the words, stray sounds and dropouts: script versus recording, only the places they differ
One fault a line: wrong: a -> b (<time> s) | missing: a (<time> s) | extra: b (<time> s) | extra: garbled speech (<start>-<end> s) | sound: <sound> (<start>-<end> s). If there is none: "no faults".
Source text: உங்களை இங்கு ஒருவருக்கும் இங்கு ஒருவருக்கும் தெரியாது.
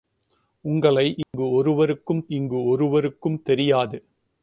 sound: dropout (1.2-1.3 s)